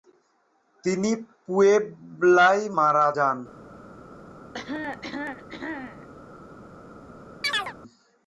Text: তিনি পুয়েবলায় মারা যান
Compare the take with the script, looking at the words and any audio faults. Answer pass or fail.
fail